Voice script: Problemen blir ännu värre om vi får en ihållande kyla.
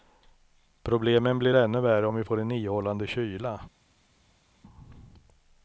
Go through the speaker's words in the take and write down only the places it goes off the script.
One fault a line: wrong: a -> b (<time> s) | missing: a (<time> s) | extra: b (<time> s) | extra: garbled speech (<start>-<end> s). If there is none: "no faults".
no faults